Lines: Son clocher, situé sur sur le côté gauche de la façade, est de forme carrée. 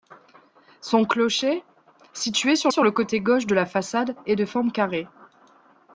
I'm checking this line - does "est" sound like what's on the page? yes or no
yes